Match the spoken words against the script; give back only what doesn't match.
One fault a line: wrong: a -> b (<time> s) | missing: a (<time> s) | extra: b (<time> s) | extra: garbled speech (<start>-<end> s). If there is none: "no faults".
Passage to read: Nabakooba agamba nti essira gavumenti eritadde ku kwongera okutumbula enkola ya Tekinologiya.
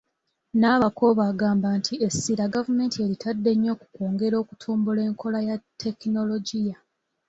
extra: nnyo (3.5 s)